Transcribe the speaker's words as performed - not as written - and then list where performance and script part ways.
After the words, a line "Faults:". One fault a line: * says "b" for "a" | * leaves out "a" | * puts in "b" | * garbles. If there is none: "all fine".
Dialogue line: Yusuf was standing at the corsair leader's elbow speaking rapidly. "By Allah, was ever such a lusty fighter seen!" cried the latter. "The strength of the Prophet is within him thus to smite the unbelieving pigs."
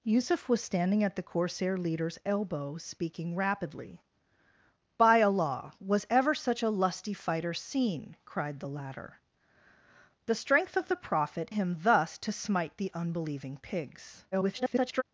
Yusuf was standing at the corsair leader's elbow speaking rapidly. "By Allah, was ever such a lusty fighter seen!" cried the latter. "The strength of the Prophet him thus to smite the unbelieving pigs." [garbled]
Faults:
* leaves out "is within"
* garbles